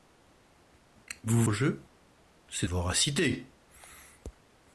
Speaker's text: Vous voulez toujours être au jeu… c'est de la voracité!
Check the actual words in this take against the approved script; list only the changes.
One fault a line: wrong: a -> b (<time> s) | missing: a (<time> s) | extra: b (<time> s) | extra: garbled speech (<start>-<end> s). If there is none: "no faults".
missing: voulez toujours être (1.4 s)
missing: de la (2.7 s)